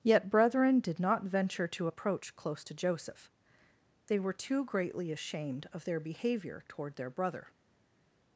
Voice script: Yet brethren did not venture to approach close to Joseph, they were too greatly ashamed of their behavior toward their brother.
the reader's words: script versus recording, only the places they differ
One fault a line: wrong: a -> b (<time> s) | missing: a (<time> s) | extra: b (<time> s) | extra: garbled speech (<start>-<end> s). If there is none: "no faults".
no faults